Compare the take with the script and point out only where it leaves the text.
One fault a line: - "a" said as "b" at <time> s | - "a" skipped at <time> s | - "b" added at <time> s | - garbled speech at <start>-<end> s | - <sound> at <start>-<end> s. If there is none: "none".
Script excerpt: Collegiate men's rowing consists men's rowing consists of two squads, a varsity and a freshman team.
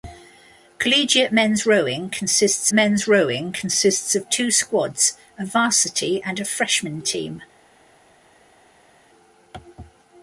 none